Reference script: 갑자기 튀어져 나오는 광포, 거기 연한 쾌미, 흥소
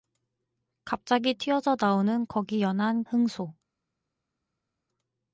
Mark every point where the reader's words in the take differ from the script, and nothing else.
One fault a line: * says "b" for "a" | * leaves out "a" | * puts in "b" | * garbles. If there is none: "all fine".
* leaves out "광포"
* leaves out "쾌미"